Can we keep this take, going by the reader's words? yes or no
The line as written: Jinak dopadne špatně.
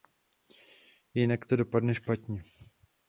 no